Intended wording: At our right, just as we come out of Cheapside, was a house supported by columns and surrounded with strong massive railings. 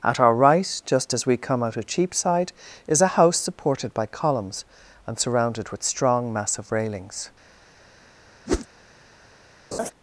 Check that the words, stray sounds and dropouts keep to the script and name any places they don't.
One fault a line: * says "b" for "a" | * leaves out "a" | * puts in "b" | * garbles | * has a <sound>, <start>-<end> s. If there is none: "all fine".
* says "is" for "was"
* has a whoosh, 8.5-8.7 s
* has a laugh, 9.7-9.9 s